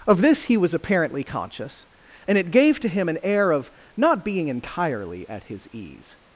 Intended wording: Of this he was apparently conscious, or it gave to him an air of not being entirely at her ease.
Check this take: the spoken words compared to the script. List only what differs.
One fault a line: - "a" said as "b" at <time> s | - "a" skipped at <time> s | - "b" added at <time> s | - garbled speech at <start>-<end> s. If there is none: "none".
- "or" said as "and" at 2.3 s
- "her" said as "his" at 5.5 s